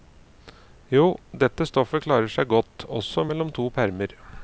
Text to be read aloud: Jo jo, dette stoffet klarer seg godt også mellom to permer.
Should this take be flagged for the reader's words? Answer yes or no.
yes